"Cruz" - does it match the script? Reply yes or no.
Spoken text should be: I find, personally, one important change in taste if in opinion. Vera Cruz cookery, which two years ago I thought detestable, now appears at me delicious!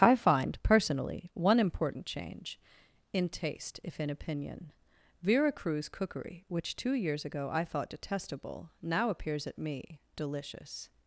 yes